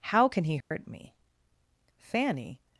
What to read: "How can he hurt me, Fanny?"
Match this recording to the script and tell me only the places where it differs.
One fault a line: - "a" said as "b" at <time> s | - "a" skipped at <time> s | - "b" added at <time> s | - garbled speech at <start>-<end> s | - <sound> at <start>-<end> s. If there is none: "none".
- dropout at 0.6-0.7 s